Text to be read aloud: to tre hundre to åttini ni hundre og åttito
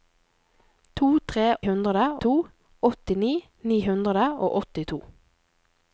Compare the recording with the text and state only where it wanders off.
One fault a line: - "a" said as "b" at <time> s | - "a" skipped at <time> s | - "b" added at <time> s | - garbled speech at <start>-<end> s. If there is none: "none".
none